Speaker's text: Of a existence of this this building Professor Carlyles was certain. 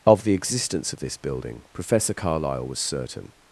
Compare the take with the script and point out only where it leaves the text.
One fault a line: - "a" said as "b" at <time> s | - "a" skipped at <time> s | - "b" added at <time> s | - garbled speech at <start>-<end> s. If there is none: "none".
- "a" said as "the" at 0.2 s
- "this" skipped at 1.2 s
- "Carlyles" said as "Carlyle" at 2.1 s